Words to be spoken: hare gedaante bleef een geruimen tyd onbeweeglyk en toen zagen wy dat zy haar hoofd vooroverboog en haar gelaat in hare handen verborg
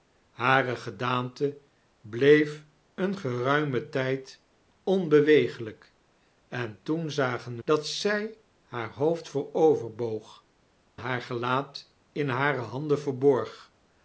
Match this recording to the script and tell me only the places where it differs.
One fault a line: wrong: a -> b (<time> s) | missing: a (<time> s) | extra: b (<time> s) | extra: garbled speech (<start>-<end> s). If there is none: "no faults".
missing: wy (7.6 s)
missing: en (10.5 s)